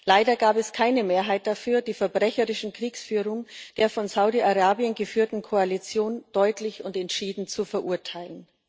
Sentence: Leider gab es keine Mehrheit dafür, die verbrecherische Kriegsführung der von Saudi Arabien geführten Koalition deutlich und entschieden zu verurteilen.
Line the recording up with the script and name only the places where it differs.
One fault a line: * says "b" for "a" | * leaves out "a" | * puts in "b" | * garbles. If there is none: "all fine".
all fine